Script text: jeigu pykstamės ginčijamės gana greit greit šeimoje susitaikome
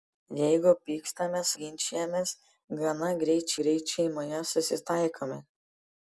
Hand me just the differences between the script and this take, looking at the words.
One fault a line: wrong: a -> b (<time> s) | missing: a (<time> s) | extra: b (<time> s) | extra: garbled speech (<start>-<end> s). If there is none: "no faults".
no faults